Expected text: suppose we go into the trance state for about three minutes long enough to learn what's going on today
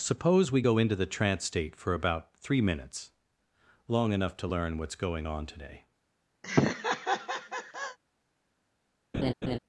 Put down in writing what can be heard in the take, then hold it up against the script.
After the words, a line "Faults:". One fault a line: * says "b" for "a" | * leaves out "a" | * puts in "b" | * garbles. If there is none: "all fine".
suppose we go into the trance state for about three minutes long enough to learn what's going on today
Faults:
all fine